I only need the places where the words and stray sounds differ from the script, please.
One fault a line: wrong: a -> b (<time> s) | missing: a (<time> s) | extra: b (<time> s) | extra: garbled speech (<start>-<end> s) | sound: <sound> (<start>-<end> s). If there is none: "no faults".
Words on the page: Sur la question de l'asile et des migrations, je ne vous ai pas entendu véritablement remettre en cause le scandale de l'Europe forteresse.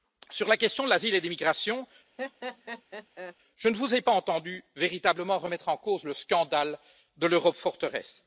sound: laugh (2.2-3.4 s)